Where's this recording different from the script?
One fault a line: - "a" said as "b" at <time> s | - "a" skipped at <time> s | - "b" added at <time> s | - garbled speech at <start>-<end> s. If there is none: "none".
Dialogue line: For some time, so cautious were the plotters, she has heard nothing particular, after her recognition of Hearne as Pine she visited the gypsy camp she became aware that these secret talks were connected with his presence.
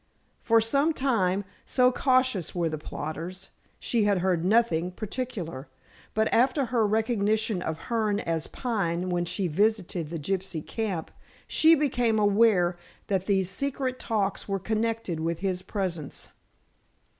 - "has" said as "had" at 4.0 s
- "but" added at 6.2 s
- "when" added at 9.1 s